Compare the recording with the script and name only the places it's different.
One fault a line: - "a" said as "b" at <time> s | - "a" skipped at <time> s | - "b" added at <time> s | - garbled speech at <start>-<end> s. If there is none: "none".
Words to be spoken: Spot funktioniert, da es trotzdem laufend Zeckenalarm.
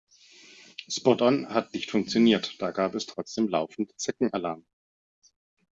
- "on hat nicht" added at 1.2 s
- "gab" added at 2.7 s